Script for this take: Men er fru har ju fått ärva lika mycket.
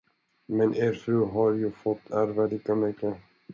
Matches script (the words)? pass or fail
pass